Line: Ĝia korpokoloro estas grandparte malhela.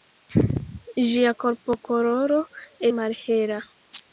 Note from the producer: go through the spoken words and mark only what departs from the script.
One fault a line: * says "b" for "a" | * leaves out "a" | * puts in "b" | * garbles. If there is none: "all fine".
* leaves out "estas grandparte"